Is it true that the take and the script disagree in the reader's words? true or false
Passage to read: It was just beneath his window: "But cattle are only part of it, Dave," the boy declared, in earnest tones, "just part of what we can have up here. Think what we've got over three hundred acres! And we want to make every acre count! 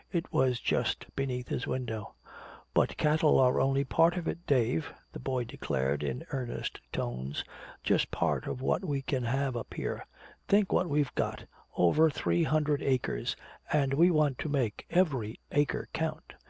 false